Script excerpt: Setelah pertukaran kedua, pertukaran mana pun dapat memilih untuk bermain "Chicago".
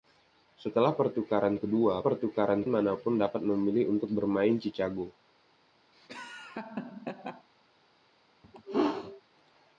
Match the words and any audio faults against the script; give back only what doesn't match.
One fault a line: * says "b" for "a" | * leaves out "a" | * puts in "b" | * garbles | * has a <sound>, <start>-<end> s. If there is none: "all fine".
* has a laugh, 5.9-7.5 s
* has a sneeze, 8.4-9.2 s